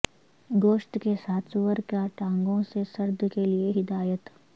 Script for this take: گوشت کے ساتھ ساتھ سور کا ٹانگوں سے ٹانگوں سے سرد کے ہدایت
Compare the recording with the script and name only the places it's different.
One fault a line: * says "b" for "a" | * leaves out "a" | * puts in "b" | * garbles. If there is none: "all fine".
* leaves out "ساتھ"
* leaves out "ٹانگوں سے"
* puts in "لئے"